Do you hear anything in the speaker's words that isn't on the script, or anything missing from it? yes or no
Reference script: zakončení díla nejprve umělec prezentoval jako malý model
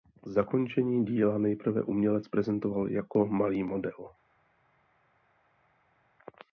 no